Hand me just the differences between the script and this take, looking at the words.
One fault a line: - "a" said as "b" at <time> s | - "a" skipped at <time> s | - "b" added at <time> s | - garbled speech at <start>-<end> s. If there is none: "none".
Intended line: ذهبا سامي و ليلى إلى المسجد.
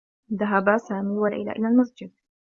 none